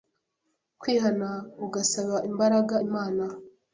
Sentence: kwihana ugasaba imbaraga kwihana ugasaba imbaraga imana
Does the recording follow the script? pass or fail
fail